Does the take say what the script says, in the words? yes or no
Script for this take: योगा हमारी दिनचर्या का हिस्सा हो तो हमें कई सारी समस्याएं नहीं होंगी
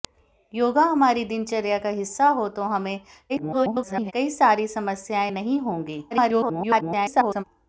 no